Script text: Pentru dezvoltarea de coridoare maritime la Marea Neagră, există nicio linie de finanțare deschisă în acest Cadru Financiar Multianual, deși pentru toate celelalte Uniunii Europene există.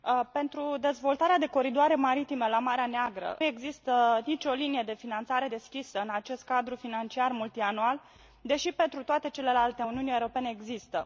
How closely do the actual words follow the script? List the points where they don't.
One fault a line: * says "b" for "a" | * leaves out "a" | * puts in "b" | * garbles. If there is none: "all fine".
all fine